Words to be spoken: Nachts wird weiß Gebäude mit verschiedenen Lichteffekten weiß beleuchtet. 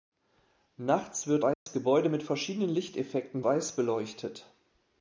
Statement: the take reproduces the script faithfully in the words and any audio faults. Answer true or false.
false